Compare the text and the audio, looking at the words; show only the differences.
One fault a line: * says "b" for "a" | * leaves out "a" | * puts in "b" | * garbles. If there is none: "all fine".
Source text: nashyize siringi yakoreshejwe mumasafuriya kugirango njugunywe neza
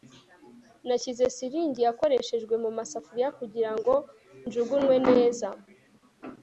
all fine